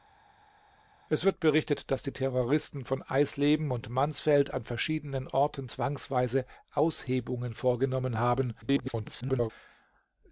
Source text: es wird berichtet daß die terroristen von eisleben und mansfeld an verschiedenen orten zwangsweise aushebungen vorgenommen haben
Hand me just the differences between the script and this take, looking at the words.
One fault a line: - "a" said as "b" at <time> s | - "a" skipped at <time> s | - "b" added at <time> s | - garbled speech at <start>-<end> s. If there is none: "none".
- garbled speech at 8.6-9.5 s